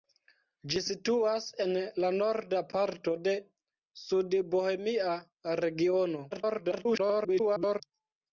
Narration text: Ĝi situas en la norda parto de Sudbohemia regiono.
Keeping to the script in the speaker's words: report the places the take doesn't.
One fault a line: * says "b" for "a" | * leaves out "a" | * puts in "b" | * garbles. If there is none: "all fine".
* garbles